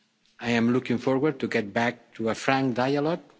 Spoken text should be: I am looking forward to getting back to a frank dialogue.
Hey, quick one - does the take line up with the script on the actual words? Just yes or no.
yes